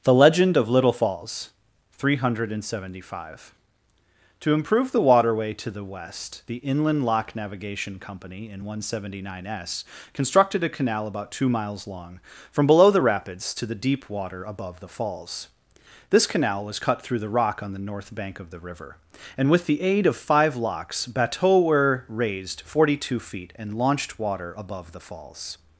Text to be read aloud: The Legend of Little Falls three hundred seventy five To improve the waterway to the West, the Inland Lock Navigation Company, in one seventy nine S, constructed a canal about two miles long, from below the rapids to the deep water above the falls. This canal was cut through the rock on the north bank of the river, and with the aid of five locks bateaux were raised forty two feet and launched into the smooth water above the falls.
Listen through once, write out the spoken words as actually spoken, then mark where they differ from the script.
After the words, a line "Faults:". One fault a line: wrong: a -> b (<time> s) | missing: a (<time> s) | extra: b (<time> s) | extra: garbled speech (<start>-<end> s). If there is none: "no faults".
The Legend of Little Falls three hundred seventy five To improve the waterway to the West, the Inland Lock Navigation Company, in one seventy nine S, constructed a canal about two miles long, from below the rapids to the deep water above the falls. This canal was cut through the rock on the north bank of the river, and with the aid of five locks bateaux were raised forty two feet and launched water above the falls.
Faults:
missing: into the smooth (24.2 s)